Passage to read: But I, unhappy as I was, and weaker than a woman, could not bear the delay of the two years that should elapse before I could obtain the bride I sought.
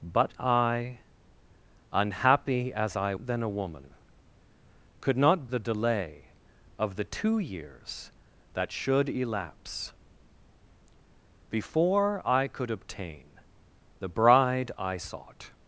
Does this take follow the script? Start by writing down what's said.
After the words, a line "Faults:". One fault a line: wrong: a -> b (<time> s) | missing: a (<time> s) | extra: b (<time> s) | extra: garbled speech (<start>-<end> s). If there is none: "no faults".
But I, unhappy as I than a woman, could not the delay of the two years that should elapse before I could obtain the bride I sought.
Faults:
missing: was and weaker (3.1 s)
missing: bear (5.5 s)